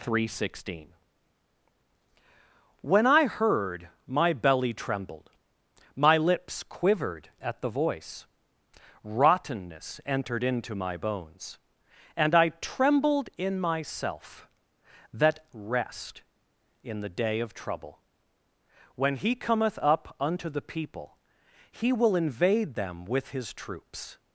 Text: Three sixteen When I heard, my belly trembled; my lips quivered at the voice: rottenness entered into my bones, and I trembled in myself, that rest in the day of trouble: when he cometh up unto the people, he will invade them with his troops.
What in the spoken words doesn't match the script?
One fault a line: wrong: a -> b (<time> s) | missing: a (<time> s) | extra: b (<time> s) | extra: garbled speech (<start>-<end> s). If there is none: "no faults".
no faults